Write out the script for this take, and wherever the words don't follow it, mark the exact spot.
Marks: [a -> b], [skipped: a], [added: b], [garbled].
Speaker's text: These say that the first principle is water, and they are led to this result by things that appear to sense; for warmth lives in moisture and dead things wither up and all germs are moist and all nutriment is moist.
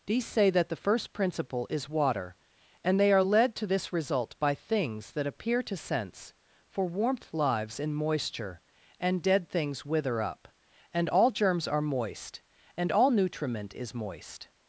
These say that the first principle is water, and they are led to this result by things that appear to sense; for warmth lives in moisture and dead things wither up and all germs are moist and all nutriment is moist.